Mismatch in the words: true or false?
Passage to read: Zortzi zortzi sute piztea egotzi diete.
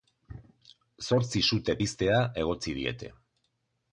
true